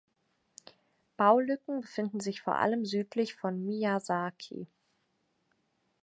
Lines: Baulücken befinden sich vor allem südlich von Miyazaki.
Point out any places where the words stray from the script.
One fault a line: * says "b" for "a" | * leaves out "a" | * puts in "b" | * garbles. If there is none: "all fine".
all fine